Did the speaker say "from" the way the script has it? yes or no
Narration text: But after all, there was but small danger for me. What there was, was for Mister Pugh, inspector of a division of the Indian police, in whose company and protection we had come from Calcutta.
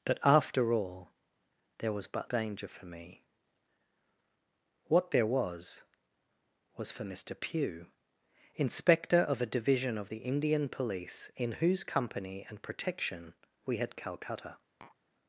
no